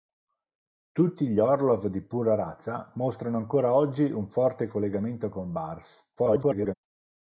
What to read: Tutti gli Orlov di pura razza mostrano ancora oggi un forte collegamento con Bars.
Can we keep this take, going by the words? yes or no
no